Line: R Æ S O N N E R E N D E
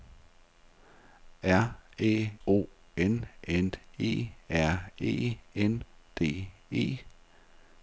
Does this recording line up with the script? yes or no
no